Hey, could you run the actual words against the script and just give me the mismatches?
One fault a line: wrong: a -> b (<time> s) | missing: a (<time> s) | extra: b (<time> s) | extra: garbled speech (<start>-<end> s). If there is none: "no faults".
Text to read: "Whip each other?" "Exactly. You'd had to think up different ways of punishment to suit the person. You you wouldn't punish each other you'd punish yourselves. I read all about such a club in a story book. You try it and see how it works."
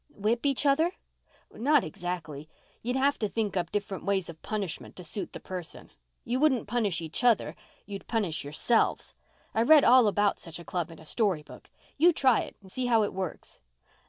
extra: Not (1.5 s)
wrong: had -> have (3.0 s)
missing: you (6.4 s)